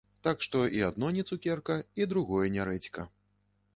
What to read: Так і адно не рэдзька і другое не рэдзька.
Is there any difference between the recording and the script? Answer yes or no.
yes